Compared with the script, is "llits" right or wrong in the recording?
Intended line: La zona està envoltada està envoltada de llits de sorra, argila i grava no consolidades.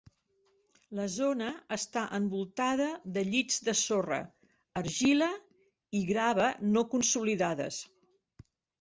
right